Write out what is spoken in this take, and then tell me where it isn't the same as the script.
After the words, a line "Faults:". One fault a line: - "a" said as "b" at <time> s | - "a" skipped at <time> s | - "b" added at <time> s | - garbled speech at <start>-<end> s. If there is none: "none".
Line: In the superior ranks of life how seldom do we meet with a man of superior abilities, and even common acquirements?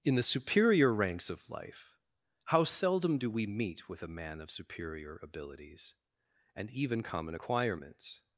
In the superior ranks of life how seldom do we meet with a man of superior abilities, and even common acquirements?
Faults:
none